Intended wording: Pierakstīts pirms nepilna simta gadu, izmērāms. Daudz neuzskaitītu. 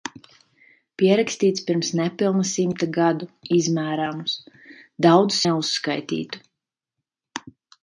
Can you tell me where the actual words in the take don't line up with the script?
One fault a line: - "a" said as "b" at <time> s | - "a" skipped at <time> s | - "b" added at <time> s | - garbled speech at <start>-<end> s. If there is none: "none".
none